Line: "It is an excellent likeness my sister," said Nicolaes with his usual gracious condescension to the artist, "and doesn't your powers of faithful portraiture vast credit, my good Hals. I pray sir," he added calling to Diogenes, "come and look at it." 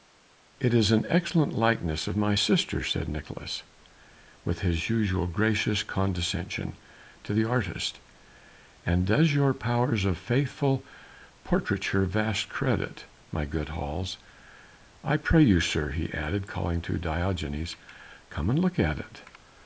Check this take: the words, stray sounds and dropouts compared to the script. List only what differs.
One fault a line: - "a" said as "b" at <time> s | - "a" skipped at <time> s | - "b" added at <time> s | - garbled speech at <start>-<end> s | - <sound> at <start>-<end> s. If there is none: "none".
- "of" added at 2.1 s
- "doesn't" said as "does" at 9.0 s
- "you" added at 15.4 s